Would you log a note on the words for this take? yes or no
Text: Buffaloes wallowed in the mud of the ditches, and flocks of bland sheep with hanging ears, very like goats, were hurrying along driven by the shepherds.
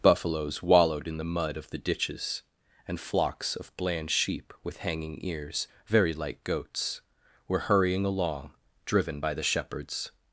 no